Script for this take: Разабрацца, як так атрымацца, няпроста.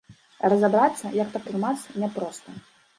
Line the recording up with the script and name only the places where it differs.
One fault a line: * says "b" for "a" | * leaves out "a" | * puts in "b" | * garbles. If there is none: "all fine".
all fine